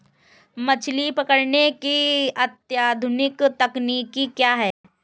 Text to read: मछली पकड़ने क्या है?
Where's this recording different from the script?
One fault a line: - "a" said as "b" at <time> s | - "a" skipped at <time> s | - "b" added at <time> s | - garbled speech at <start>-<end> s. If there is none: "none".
- "की अत्याधुनिक तकनीकी" added at 1.7 s